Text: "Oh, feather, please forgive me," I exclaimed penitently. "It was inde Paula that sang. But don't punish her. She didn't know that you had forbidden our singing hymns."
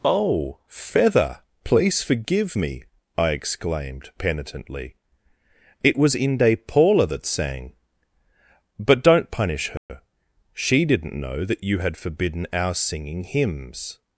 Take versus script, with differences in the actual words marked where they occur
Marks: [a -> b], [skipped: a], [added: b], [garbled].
"Oh, feather, please forgive me," I exclaimed penitently. "It was inde Paula that sang. But don't punish her. She didn't know that you had forbidden our singing hymns."